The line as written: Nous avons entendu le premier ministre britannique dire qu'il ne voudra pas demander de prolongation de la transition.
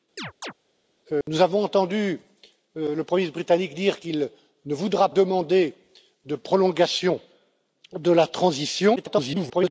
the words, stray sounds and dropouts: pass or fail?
fail